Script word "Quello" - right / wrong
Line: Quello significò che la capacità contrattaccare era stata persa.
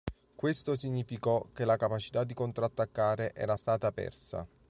wrong